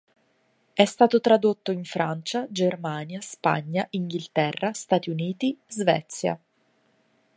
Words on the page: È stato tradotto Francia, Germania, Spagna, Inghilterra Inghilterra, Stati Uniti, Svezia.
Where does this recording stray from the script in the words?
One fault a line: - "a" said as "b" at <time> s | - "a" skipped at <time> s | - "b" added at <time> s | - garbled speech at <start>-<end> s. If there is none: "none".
- "in" added at 1.7 s
- "Inghilterra" skipped at 4.7 s